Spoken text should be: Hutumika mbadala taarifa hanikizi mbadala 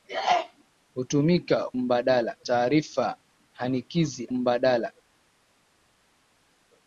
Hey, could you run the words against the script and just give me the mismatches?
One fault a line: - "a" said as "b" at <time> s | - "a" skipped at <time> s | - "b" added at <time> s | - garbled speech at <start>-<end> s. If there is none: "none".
none